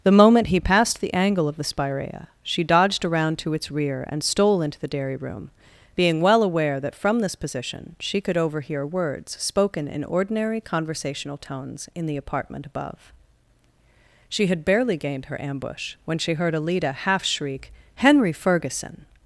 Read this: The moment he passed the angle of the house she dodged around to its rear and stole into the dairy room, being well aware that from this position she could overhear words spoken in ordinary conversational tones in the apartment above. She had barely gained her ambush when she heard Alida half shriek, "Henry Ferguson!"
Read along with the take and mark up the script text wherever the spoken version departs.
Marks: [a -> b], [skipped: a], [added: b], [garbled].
The moment he passed the angle of the [house -> spirea] she dodged around to its rear and stole into the dairy room, being well aware that from this position she could overhear words spoken in ordinary conversational tones in the apartment above. She had barely gained her ambush when she heard Alida half shriek, "Henry Ferguson!"